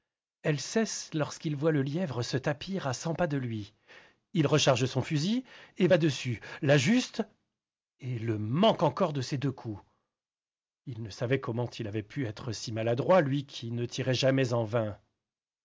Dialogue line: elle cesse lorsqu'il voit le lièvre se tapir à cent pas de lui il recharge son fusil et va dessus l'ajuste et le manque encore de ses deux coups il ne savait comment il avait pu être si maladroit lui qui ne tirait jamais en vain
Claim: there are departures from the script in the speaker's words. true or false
false